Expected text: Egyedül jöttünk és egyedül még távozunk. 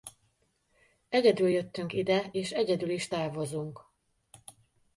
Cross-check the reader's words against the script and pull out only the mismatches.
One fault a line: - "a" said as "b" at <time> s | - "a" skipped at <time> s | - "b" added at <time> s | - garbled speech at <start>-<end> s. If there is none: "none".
- "ide" added at 1.9 s
- "még" said as "is" at 2.9 s